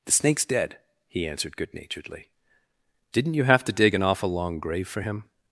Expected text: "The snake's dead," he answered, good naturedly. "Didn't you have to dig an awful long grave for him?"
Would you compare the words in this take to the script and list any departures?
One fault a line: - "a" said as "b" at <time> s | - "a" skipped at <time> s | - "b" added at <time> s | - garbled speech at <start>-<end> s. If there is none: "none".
none